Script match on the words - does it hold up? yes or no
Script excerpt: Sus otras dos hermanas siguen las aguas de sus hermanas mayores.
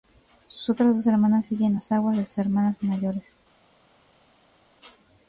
yes